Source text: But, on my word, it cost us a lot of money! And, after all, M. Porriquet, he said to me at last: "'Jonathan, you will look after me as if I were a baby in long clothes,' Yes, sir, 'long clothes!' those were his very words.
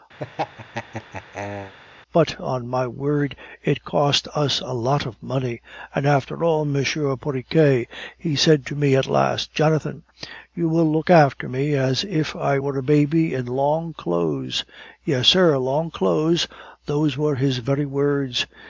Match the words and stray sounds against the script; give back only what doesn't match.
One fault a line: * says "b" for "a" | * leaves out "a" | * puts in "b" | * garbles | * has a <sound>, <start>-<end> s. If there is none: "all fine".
* has a laugh, 0.2-1.7 s